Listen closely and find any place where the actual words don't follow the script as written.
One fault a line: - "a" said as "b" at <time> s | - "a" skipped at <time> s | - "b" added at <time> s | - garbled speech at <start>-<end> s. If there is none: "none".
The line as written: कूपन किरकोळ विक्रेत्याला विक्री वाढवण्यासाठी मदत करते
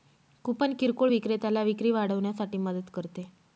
none